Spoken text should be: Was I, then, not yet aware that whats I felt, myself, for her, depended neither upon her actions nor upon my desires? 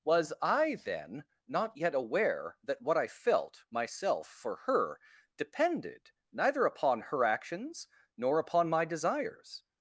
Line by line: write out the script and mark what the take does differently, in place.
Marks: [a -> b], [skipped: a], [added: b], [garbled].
Was I, then, not yet aware that [whats -> what] I felt, myself, for her, depended neither upon her actions nor upon my desires?